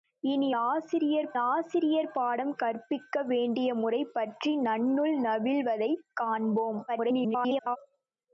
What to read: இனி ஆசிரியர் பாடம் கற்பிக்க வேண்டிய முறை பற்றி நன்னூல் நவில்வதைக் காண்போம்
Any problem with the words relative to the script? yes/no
yes